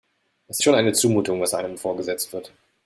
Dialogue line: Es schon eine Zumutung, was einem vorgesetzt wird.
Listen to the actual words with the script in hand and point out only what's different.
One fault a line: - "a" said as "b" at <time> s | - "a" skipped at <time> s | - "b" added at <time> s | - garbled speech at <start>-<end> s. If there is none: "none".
none